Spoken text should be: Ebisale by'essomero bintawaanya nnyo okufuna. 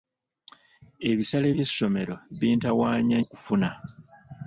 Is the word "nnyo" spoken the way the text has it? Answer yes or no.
no